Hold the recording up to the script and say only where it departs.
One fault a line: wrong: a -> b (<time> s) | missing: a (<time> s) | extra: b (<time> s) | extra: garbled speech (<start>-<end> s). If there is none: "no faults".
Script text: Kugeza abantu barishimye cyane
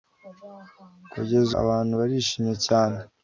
no faults